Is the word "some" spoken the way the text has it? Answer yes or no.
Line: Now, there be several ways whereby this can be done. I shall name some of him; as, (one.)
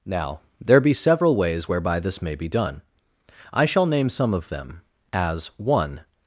yes